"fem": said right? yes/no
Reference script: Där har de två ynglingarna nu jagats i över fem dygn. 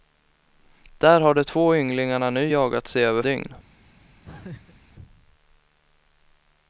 no